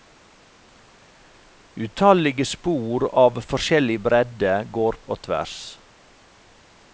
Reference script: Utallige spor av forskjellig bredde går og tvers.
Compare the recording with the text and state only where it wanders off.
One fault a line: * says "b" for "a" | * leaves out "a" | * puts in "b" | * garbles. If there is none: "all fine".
all fine